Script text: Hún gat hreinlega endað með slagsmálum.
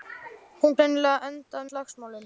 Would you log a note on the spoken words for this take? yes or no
yes